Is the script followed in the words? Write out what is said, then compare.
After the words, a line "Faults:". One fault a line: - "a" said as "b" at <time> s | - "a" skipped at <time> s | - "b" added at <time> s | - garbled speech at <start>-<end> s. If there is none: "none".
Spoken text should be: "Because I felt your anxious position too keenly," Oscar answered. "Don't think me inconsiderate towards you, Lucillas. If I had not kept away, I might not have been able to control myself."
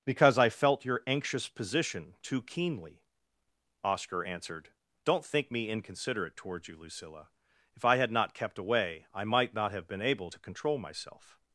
"Because I felt your anxious position too keenly," Oscar answered. "Don't think me inconsiderate towards you, Lucilla. If I had not kept away, I might not have been able to control myself."
Faults:
- "Lucillas" said as "Lucilla" at 6.8 s